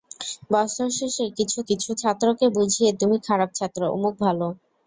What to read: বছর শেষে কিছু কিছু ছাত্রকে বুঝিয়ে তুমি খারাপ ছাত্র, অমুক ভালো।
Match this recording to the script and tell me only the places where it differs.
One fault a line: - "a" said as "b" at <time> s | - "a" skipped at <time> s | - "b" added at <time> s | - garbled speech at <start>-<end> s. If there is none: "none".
none